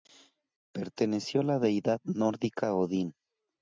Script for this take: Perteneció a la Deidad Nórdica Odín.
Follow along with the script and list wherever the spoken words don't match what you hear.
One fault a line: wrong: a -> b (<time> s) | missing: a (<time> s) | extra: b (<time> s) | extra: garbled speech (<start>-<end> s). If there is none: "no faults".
no faults